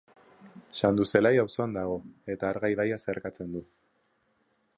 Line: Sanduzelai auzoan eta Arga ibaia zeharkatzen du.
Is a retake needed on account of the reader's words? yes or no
yes